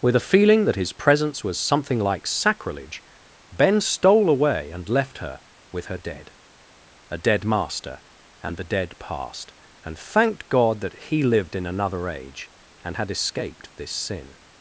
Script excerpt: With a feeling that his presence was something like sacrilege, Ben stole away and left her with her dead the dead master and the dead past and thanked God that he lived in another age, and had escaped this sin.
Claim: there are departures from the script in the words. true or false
true